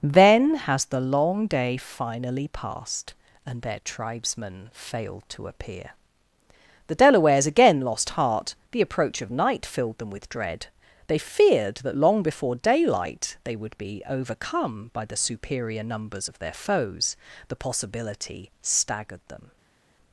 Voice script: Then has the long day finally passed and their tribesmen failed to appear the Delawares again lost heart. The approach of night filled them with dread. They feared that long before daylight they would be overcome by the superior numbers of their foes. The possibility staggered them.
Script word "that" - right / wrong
right